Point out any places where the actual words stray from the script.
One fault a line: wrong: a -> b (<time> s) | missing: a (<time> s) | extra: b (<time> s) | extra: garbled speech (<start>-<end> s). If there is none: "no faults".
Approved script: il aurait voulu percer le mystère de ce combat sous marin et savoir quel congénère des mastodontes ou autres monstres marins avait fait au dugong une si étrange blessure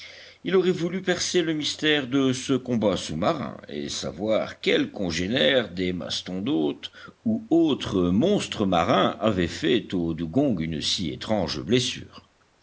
no faults